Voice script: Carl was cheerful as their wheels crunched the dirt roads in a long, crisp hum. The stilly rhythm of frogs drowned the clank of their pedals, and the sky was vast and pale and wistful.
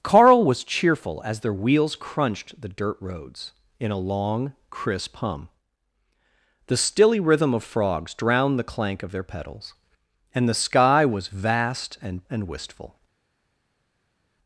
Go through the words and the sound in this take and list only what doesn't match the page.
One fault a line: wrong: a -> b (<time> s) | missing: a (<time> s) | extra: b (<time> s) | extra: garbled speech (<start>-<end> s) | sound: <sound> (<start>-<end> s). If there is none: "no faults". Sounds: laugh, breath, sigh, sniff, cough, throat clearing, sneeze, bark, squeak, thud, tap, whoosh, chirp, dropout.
missing: pale (12.2 s)